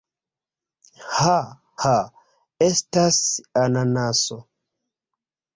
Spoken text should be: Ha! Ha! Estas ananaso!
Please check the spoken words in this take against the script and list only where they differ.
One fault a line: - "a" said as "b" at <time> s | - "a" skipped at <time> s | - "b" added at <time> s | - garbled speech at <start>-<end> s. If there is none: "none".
none